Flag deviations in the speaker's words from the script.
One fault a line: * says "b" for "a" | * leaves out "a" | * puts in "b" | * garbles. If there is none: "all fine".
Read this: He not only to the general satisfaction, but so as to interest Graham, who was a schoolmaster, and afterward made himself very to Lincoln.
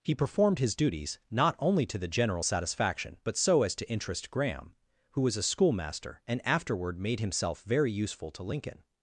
* puts in "performed his duties"
* puts in "useful"